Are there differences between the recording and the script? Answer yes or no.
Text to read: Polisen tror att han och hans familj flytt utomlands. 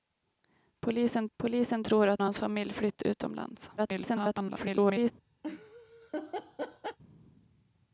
yes